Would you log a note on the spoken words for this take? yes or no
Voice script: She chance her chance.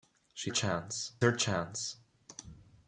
no